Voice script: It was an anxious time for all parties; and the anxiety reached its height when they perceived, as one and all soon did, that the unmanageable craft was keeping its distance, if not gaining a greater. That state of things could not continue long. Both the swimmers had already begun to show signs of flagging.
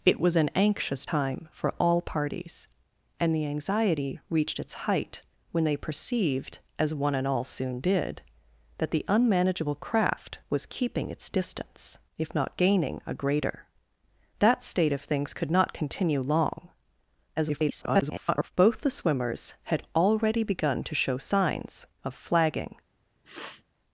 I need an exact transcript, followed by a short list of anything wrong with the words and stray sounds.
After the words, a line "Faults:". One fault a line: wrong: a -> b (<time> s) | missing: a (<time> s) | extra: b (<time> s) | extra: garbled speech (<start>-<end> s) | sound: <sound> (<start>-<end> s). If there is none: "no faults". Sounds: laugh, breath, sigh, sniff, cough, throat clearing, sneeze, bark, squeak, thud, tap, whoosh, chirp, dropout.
It was an anxious time for all parties; and the anxiety reached its height when they perceived, as one and all soon did, that the unmanageable craft was keeping its distance, if not gaining a greater. That state of things could not continue long. [garbled] Both the swimmers had already begun to show signs of flagging.
Faults:
extra: garbled speech (17.4-18.5 s)
sound: sniff (23.2-23.6 s)